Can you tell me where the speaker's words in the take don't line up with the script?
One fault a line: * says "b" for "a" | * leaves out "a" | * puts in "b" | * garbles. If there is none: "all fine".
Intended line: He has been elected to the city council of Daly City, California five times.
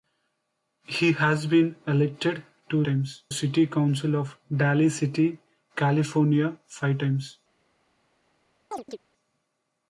* says "times" for "the"